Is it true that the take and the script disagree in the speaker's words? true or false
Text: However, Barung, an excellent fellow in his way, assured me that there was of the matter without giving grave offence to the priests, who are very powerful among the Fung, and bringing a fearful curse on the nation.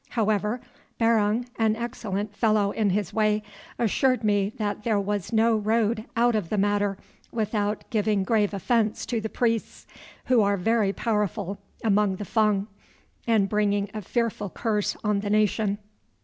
true